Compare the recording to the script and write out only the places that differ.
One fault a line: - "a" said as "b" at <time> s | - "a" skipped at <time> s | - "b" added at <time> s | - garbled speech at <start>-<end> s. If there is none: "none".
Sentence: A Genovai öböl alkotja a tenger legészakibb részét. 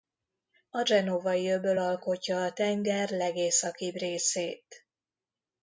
none